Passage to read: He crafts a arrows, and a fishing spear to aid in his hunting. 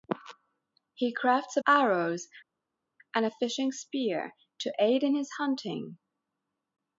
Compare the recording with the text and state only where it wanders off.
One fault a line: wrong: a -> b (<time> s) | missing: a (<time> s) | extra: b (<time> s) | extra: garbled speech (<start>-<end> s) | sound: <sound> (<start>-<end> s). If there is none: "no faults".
no faults